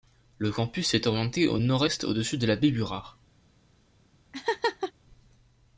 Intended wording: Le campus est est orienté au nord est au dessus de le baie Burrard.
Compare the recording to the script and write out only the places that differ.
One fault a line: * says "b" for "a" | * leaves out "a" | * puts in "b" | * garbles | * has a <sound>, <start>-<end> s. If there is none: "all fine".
* leaves out "est"
* says "la" for "le"
* has a laugh, 4.3-4.9 s